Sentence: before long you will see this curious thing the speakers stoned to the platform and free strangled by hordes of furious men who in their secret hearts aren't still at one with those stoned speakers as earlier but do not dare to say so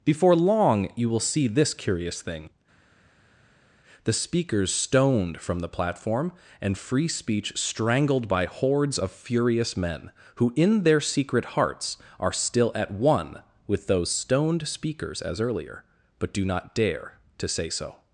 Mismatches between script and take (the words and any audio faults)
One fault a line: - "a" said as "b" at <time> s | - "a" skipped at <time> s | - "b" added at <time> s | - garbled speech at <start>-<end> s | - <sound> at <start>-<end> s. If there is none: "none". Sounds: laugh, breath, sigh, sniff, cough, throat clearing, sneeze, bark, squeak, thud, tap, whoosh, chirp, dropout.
- "to" said as "from" at 5.4 s
- "speech" added at 7.1 s
- "aren't" said as "are" at 12.2 s